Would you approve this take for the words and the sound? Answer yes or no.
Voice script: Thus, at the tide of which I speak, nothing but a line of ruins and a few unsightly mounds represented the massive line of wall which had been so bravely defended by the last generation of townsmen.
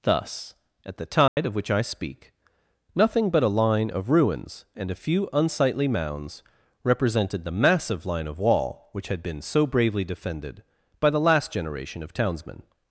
no